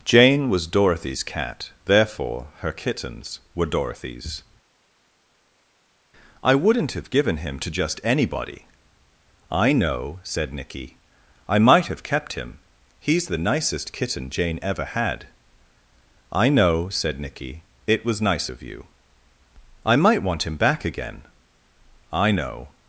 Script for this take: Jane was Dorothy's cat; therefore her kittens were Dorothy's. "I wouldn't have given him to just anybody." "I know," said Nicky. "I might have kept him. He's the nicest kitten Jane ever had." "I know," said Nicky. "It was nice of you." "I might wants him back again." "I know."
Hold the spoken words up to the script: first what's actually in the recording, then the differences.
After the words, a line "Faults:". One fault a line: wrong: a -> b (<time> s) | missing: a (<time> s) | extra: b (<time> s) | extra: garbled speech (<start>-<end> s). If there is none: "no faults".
Jane was Dorothy's cat; therefore her kittens were Dorothy's. "I wouldn't have given him to just anybody." "I know," said Nicky. "I might have kept him. He's the nicest kitten Jane ever had." "I know," said Nicky. "It was nice of you." "I might want him back again." "I know."
Faults:
wrong: wants -> want (20.2 s)